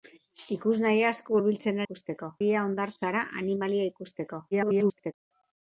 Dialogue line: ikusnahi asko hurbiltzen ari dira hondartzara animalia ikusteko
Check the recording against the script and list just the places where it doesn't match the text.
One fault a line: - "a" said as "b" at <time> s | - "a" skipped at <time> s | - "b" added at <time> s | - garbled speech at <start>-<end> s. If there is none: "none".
- "ari" said as "ikusteko" at 1.8 s
- garbled speech at 4.5-5.1 s